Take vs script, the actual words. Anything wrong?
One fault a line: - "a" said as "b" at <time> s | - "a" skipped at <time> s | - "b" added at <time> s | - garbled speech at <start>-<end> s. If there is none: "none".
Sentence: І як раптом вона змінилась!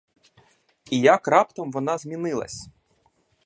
none